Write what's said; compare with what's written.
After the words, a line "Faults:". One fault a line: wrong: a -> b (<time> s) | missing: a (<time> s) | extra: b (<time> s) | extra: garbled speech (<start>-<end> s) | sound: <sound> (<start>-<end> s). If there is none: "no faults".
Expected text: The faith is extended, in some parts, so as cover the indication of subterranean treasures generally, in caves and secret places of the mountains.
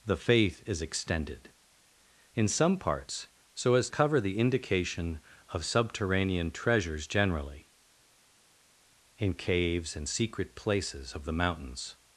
The faith is extended, in some parts, so as cover the indication of subterranean treasures generally, in caves and secret places of the mountains.
Faults:
no faults